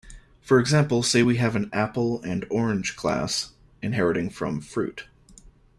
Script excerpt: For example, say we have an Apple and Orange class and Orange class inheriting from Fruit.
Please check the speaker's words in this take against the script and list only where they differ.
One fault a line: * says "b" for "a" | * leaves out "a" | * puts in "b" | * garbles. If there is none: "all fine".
* leaves out "and Orange class"